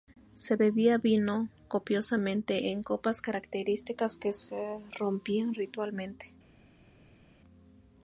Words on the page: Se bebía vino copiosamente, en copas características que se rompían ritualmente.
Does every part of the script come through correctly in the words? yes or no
yes